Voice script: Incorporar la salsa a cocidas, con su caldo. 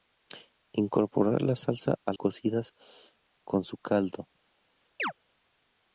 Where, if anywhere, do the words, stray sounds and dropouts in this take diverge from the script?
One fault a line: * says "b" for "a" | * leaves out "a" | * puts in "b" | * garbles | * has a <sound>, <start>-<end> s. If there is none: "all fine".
* has a chirp, 5.0-5.1 s